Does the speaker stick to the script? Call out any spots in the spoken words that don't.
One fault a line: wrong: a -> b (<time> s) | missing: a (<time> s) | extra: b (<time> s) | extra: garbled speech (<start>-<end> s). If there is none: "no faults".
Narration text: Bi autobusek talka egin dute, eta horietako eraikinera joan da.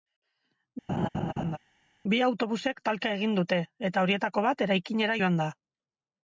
extra: bat (4.5 s)